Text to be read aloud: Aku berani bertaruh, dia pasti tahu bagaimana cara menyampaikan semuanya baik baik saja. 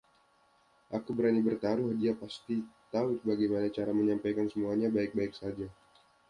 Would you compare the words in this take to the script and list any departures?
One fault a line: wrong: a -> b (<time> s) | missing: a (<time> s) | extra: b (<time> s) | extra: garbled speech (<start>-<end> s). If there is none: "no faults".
no faults